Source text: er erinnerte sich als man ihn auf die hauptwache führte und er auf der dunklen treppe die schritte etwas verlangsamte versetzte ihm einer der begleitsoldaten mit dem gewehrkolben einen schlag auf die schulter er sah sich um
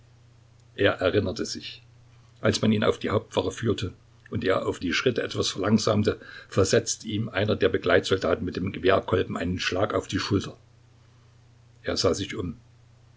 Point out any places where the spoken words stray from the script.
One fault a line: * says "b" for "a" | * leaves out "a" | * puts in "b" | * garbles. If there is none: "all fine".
* leaves out "der dunklen treppe"